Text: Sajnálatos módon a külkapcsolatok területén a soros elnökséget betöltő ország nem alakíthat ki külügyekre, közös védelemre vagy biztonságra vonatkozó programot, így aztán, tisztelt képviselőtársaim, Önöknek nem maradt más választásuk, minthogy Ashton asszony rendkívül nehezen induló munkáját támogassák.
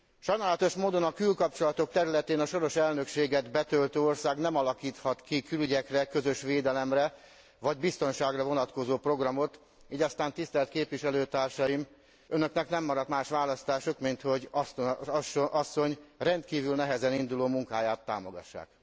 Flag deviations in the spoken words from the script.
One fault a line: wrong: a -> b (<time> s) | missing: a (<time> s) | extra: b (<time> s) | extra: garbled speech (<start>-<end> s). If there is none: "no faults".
no faults